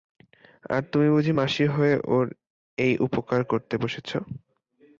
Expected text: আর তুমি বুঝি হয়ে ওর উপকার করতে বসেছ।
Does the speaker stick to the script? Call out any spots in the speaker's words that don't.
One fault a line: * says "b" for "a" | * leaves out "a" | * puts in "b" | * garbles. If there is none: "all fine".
* puts in "মাসি"
* puts in "এই"